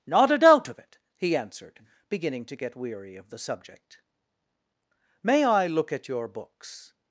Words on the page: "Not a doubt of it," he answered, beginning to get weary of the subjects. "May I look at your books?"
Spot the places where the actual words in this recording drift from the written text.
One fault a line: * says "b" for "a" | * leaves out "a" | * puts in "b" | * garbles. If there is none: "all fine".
* says "subject" for "subjects"